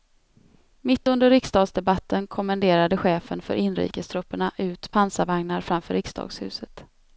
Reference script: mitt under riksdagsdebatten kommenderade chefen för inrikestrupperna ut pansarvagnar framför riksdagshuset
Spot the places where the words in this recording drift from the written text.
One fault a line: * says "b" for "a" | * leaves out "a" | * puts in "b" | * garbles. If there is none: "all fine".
all fine